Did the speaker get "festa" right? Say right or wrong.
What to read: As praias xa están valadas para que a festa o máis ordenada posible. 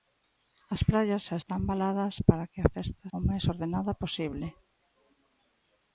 right